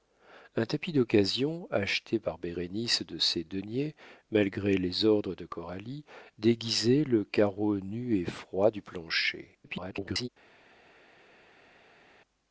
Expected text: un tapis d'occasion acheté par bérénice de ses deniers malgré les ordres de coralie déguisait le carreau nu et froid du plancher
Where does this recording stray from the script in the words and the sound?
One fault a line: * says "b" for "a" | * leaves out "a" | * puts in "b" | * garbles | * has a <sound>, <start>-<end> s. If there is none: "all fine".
* garbles